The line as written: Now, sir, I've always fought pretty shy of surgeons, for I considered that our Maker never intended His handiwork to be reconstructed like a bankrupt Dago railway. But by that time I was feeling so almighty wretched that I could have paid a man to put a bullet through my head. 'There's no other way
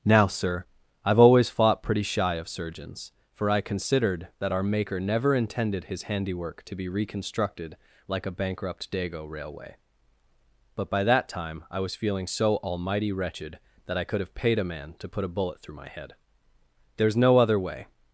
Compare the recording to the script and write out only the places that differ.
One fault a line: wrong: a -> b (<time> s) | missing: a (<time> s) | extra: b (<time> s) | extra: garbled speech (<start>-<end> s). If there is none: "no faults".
no faults